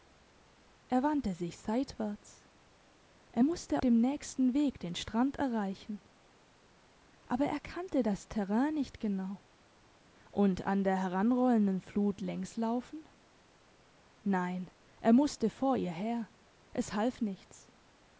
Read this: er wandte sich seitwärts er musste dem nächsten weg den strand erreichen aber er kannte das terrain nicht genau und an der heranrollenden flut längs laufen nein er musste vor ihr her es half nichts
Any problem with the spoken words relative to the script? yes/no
no